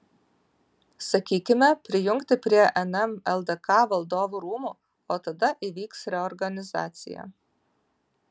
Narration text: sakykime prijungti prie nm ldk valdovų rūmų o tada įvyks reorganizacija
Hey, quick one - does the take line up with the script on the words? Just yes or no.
yes